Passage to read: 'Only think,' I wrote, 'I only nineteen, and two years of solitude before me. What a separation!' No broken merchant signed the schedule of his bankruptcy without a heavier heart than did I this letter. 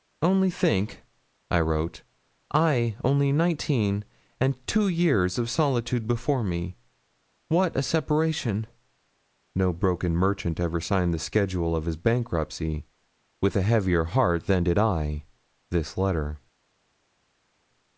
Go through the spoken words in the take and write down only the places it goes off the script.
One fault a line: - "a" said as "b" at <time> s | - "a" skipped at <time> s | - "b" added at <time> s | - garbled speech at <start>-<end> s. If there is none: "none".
- "ever" added at 10.6 s
- "without" said as "with" at 13.4 s